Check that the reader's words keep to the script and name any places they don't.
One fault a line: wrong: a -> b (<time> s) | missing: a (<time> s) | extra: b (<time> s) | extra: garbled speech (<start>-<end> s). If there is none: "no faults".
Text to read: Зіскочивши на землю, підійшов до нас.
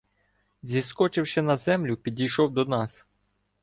no faults